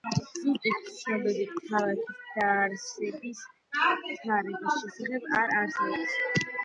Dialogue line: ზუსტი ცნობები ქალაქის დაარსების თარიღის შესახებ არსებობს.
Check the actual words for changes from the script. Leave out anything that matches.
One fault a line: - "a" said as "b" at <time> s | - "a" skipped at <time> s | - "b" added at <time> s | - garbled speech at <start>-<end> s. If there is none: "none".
- "არ" added at 5.4 s